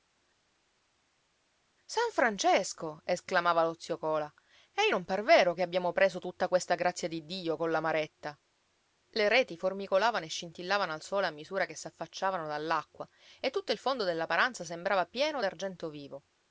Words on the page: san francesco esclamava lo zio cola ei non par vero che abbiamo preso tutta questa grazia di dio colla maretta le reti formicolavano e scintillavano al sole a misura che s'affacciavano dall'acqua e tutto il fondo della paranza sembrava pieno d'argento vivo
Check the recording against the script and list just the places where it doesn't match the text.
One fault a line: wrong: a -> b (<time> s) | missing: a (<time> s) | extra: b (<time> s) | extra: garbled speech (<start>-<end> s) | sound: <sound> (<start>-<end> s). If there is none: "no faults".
no faults